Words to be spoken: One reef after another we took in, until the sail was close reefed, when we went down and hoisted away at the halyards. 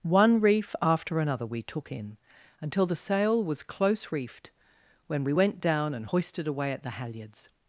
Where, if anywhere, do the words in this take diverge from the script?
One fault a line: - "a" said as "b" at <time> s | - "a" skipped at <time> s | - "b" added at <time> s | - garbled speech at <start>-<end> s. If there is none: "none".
none